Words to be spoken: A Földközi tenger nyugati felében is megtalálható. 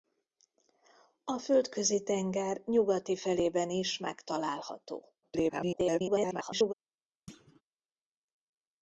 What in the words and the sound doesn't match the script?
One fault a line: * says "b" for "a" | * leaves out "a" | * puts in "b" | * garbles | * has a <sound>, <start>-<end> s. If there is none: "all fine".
* garbles
* has a thud, 7.3-7.6 s